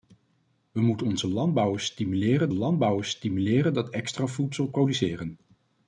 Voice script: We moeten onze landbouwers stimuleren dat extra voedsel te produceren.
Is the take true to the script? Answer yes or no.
no